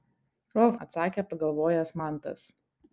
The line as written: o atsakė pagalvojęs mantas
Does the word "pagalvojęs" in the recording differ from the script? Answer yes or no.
no